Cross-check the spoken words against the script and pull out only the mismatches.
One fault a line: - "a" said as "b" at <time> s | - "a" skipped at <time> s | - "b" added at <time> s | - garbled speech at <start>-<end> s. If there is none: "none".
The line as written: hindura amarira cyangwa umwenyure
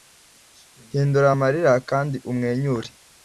- "cyangwa" said as "kandi" at 1.9 s